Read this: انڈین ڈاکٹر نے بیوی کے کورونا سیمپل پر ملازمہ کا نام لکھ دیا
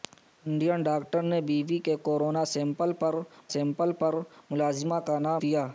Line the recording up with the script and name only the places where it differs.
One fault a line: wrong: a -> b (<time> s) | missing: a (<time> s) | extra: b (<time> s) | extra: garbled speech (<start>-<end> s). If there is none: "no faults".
extra: سیمپل پر (3.5 s)
missing: لکھ (5.4 s)